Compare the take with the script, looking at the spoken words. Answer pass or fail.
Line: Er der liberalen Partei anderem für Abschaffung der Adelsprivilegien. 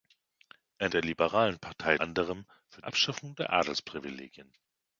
pass